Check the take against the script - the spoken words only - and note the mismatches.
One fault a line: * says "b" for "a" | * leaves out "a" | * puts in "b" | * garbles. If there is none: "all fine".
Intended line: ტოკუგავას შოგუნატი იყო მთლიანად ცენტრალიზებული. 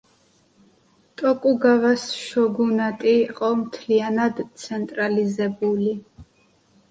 all fine